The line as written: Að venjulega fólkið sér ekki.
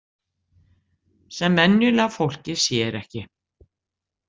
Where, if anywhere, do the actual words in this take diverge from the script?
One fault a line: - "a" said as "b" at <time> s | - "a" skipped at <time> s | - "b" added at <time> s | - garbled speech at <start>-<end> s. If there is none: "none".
- "Að" said as "Sem" at 1.4 s